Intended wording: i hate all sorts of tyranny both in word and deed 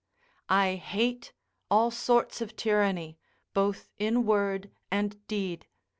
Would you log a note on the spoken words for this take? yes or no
no